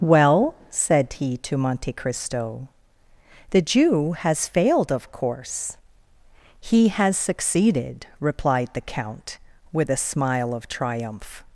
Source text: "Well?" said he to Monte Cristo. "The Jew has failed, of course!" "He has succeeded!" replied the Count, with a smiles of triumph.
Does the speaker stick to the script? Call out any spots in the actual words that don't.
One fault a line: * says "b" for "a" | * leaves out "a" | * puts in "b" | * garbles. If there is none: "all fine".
* says "smile" for "smiles"